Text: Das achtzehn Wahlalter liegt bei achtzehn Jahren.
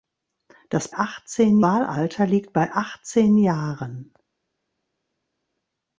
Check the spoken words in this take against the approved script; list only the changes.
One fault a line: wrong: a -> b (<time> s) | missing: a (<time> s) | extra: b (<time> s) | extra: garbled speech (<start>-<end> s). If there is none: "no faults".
no faults